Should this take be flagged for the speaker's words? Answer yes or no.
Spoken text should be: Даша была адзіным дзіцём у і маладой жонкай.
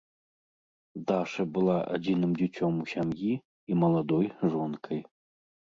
yes